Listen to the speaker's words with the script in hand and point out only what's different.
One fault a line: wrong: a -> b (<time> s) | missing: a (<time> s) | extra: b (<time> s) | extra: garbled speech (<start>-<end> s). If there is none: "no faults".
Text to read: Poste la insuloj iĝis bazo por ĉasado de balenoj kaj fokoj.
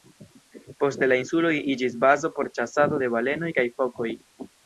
no faults